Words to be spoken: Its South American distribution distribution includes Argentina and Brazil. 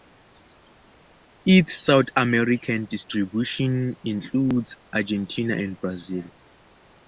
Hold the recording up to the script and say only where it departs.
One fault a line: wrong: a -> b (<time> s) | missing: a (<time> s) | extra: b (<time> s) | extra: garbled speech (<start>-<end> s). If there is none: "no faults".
missing: distribution (4.0 s)